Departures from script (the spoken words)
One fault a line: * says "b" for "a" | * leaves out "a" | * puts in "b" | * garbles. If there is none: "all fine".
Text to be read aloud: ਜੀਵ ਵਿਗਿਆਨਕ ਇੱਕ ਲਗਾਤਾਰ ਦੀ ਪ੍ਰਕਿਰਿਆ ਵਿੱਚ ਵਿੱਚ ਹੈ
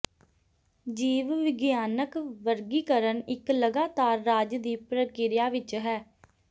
* puts in "ਵਰਗੀਕਰਨ"
* puts in "ਰਾਜ"
* leaves out "ਵਿੱਚ"